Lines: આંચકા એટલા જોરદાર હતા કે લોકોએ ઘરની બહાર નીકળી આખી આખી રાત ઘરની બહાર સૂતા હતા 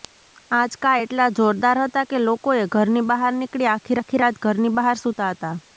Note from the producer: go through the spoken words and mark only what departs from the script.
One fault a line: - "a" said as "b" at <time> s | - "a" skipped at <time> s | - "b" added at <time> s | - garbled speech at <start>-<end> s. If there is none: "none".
none